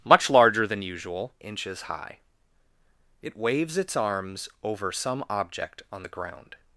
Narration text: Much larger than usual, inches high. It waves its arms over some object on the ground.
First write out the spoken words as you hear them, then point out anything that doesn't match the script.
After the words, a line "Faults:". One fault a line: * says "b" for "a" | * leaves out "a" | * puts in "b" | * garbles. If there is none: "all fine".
Much larger than usual, inches high. It waves its arms over some object on the ground.
Faults:
all fine